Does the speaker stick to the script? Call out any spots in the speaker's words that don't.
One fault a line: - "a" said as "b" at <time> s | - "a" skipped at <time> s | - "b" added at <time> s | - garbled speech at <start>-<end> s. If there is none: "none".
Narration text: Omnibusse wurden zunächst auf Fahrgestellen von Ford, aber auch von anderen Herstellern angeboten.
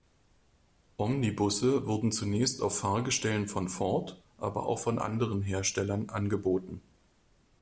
none